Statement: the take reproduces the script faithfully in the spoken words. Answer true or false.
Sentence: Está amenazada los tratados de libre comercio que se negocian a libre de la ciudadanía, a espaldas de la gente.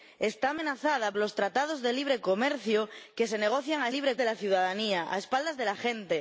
true